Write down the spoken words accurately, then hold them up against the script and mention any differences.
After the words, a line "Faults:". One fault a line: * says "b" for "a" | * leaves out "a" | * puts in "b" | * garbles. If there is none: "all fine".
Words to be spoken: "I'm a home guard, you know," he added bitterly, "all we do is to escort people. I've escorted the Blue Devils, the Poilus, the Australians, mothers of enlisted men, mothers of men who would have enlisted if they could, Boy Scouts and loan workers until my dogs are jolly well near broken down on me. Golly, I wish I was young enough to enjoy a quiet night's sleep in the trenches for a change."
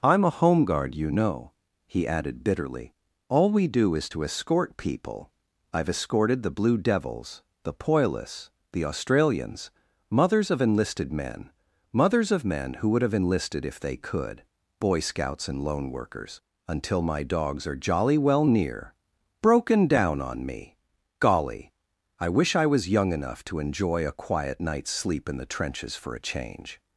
"I'm a home guard, you know," he added bitterly, "all we do is to escort people. I've escorted the Blue Devils, the Poilus, the Australians, mothers of enlisted men, mothers of men who would have enlisted if they could, Boy Scouts and loan workers until my dogs are jolly well near broken down on me. Golly, I wish I was young enough to enjoy a quiet night's sleep in the trenches for a change."
Faults:
all fine